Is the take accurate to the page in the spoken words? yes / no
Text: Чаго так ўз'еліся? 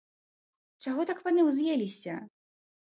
no